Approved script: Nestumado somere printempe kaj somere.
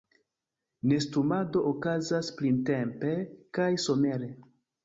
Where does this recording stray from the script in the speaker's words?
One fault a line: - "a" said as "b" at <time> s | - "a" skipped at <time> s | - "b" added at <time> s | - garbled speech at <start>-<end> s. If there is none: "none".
- "somere" said as "okazas" at 1.7 s